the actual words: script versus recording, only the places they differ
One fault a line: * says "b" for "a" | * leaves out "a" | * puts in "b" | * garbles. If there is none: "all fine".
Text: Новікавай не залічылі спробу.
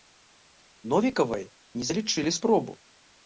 all fine